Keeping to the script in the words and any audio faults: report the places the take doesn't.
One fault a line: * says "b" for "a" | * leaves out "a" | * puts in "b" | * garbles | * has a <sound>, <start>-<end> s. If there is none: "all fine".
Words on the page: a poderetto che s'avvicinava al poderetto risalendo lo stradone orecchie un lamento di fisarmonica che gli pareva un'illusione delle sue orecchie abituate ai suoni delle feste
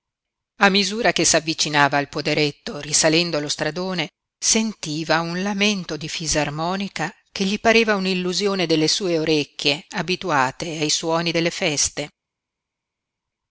* says "misura" for "poderetto"
* says "sentiva" for "orecchie"